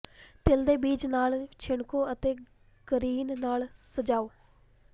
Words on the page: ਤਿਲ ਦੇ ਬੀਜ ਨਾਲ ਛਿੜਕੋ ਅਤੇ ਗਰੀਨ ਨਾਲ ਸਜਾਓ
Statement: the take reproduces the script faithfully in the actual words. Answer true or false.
true